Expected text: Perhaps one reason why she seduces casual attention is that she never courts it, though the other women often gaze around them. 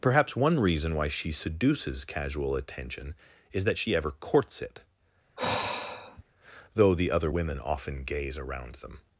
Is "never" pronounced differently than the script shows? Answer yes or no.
yes